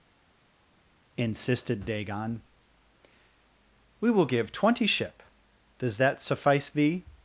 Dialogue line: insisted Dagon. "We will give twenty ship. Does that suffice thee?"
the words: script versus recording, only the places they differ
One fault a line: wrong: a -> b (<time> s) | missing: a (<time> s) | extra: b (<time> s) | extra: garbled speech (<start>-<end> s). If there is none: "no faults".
no faults